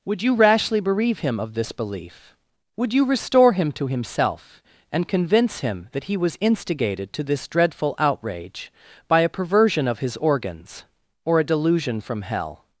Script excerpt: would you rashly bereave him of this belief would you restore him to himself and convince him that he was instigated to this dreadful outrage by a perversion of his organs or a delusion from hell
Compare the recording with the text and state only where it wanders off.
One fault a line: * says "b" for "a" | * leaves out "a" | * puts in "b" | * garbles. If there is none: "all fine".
all fine